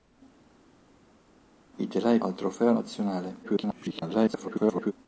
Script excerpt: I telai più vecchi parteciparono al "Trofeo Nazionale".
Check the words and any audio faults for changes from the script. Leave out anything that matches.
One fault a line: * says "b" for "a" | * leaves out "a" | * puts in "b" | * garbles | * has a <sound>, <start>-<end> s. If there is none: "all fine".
* leaves out "più vecchi parteciparono"
* garbles